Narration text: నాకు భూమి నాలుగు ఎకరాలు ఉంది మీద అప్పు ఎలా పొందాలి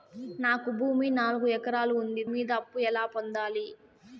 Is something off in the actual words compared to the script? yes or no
no